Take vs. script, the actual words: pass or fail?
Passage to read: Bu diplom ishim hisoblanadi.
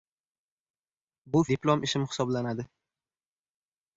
pass